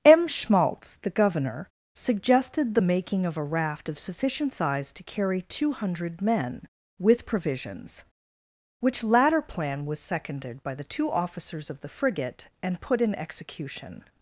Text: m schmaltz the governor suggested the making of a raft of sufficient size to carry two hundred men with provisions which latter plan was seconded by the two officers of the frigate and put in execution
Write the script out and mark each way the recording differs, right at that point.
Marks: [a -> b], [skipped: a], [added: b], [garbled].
m schmaltz the governor suggested the making of a raft of sufficient size to carry two hundred men with provisions which latter plan was seconded by the two officers of the frigate and put in execution